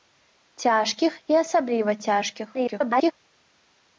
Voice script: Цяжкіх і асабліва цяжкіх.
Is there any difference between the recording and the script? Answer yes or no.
yes